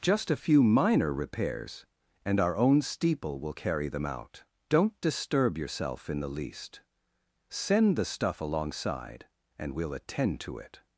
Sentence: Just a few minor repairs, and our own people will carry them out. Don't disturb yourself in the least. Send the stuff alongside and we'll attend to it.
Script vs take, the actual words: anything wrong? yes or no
yes